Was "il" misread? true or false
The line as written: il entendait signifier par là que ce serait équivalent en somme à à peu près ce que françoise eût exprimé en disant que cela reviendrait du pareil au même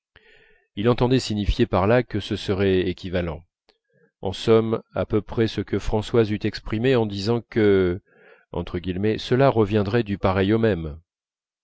false